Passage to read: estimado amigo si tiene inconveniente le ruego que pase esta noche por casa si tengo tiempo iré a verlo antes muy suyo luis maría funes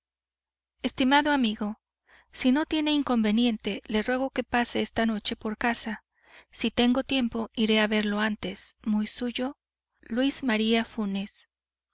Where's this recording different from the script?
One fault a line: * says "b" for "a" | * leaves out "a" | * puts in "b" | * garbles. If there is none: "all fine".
* puts in "no"